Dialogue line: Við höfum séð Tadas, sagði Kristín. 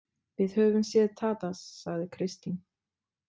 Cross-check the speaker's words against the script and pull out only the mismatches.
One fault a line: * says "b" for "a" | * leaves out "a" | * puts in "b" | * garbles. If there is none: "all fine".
all fine